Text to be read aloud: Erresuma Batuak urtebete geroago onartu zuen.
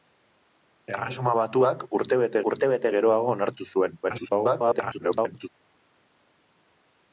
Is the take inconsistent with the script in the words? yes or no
yes